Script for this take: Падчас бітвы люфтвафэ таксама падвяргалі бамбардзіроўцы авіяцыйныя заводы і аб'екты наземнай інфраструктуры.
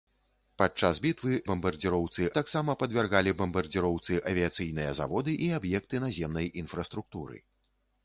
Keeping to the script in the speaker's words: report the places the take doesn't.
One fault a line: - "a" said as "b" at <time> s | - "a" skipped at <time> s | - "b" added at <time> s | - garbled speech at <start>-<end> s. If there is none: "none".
- "люфтвафэ" said as "бамбардзіроўцы" at 1.5 s